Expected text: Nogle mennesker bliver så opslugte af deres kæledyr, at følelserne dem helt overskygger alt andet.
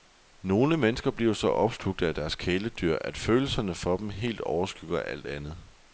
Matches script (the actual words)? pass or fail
fail